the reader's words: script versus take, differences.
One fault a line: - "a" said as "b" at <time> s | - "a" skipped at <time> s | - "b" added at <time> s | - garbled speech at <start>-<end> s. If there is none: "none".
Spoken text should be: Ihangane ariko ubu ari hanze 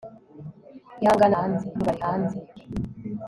- "ariko" said as "hanze" at 1.4 s